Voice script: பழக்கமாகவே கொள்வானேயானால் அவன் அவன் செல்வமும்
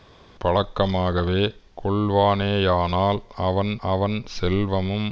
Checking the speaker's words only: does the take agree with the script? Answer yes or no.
yes